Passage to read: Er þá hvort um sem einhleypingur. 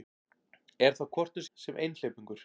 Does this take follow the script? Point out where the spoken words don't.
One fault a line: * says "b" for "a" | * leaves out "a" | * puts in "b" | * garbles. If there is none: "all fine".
all fine